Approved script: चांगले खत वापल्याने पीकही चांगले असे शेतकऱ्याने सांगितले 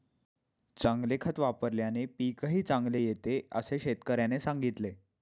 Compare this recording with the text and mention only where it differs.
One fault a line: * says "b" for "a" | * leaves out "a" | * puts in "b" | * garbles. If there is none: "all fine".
* puts in "येते"